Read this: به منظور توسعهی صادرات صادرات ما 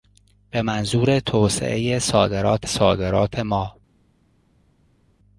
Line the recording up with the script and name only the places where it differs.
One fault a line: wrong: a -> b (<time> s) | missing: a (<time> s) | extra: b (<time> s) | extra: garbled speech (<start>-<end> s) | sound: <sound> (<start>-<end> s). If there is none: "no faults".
no faults